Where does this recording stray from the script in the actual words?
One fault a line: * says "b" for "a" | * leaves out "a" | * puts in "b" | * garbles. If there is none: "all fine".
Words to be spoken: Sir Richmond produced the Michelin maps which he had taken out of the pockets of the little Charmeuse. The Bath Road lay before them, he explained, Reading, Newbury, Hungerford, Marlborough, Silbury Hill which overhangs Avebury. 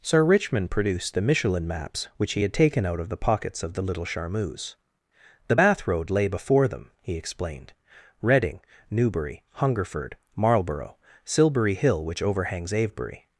all fine